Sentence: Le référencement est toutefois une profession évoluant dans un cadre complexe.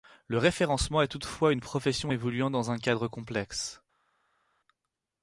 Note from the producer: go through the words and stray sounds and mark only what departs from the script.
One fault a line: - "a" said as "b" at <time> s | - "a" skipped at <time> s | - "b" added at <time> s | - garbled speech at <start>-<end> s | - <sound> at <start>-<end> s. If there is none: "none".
none